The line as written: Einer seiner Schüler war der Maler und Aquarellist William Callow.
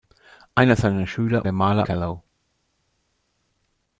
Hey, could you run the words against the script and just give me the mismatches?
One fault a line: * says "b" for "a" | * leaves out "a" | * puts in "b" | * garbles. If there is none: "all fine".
* leaves out "war"
* leaves out "und Aquarellist William"